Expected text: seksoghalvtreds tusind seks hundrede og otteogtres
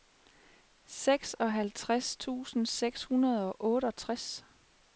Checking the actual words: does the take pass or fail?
pass